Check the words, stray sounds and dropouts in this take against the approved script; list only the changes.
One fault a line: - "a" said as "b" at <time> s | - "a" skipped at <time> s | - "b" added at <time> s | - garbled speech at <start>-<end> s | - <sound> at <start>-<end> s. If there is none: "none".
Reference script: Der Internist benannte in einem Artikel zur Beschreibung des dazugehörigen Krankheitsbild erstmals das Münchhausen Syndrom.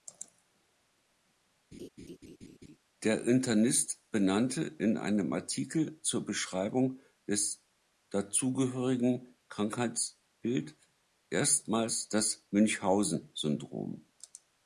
- laugh at 1.7-2.8 s